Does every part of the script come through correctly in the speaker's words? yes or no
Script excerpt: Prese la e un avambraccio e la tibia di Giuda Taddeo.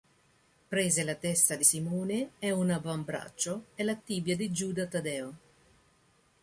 no